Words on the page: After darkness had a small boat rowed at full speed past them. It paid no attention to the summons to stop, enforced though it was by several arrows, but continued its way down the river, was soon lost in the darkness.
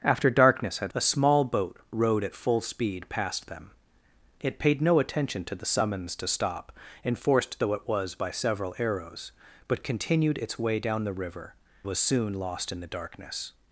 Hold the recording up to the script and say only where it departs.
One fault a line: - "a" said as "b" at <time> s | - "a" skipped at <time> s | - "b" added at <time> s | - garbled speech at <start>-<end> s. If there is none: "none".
none